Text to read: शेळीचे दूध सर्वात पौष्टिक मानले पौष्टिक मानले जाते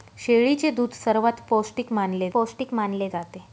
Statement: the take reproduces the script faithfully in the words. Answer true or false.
true